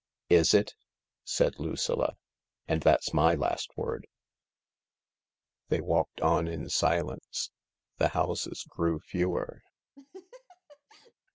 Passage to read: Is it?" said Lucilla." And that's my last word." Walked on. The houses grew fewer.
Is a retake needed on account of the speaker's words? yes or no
yes